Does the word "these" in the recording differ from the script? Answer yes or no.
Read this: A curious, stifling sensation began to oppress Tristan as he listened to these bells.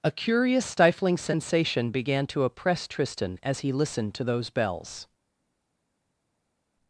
yes